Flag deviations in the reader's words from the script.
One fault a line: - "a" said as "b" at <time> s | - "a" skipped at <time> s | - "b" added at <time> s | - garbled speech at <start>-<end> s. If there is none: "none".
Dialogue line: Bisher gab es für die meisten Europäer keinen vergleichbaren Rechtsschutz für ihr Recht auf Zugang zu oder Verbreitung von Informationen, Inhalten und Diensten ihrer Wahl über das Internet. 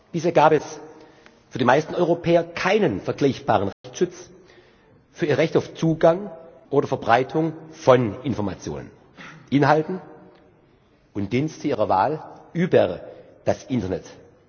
- "zu" skipped at 6.3 s